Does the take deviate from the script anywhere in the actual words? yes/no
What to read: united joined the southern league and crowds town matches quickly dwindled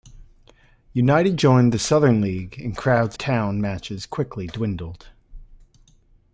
no